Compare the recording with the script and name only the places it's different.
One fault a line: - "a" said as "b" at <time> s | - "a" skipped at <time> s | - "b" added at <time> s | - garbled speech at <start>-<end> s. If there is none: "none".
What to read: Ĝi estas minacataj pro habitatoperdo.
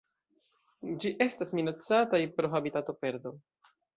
none